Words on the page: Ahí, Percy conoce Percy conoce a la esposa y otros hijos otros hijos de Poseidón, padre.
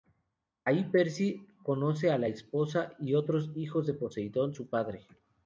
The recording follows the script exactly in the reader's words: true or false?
false